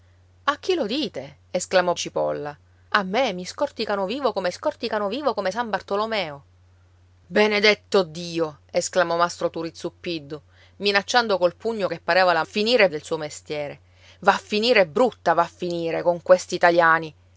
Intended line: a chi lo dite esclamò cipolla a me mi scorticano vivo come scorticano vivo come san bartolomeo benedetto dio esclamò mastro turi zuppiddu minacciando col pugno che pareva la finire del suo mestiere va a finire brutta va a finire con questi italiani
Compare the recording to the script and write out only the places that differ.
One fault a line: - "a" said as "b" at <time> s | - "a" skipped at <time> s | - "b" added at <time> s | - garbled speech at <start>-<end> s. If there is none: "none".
none